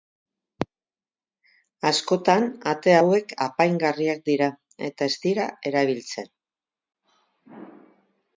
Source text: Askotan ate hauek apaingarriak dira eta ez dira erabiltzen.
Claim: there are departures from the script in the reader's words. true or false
false